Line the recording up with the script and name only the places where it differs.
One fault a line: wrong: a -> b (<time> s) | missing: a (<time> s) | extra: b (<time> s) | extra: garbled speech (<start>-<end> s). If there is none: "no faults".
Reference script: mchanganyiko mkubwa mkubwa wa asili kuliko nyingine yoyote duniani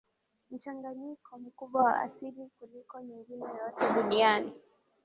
missing: mkubwa (1.9 s)